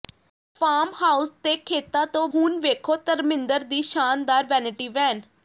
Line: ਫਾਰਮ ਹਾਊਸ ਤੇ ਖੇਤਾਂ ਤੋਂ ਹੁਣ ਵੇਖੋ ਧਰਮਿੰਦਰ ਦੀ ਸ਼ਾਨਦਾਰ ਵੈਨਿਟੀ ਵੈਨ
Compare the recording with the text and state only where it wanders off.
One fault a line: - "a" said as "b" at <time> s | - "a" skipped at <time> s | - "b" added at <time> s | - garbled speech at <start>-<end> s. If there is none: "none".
none